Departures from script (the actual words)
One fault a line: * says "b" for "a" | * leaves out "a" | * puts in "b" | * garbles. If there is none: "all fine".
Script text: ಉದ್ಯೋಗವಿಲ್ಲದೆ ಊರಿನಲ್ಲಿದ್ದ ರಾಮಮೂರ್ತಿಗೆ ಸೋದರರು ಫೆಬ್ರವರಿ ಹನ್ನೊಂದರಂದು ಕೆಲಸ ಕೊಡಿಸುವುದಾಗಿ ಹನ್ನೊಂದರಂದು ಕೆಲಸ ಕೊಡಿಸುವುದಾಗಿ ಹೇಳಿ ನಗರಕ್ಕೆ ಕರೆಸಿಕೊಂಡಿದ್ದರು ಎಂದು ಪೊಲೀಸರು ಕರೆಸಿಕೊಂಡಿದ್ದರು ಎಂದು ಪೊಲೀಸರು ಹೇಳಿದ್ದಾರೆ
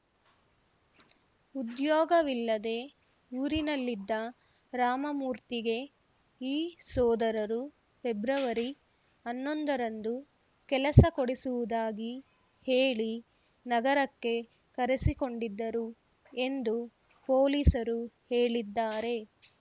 * puts in "ಈ"
* leaves out "ಹನ್ನೊಂದರಂದು ಕೆಲಸ ಕೊಡಿಸುವುದಾಗಿ"
* leaves out "ಕರೆಸಿಕೊಂಡಿದ್ದರು ಎಂದು ಪೊಲೀಸರು"